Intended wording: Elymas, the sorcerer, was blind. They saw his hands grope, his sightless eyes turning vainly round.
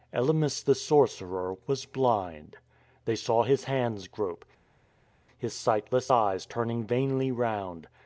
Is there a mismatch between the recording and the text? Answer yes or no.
no